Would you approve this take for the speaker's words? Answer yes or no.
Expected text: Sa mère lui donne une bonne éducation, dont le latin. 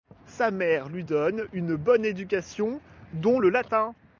yes